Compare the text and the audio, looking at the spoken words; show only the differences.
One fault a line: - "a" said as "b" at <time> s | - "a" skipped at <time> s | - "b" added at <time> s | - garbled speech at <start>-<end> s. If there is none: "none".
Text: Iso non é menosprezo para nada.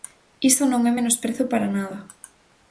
none